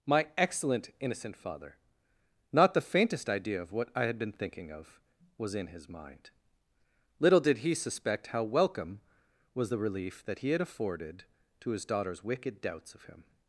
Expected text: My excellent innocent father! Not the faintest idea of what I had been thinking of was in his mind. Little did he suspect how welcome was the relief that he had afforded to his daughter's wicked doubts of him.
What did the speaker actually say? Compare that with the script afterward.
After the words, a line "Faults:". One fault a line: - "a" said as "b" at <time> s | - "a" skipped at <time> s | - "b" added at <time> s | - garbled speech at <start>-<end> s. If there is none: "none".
My excellent innocent father! Not the faintest idea of what I had been thinking of was in his mind. Little did he suspect how welcome was the relief that he had afforded to his daughter's wicked doubts of him.
Faults:
none